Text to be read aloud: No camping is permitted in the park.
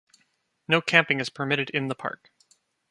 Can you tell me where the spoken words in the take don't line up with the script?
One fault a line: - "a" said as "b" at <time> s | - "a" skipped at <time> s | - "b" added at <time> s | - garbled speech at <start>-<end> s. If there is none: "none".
none